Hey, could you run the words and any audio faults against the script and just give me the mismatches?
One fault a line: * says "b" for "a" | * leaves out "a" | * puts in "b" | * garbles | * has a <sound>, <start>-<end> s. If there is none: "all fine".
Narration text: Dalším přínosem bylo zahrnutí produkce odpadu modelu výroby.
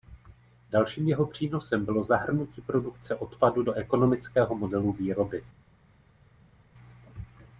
* puts in "jeho"
* puts in "do ekonomického"